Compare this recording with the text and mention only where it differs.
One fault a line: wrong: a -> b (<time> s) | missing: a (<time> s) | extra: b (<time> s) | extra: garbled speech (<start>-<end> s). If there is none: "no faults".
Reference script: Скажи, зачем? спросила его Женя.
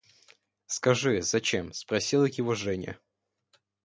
no faults